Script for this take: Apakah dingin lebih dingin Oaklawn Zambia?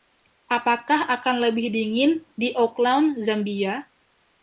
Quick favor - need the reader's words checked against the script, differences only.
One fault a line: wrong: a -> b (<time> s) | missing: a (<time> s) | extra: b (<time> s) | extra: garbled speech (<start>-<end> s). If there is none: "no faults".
wrong: dingin -> akan (1.1 s)
extra: di (2.3 s)